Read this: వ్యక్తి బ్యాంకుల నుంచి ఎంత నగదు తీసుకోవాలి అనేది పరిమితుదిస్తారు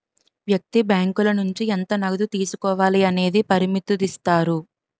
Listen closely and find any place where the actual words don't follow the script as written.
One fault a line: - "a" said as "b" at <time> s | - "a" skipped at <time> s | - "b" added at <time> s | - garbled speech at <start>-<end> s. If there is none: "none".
none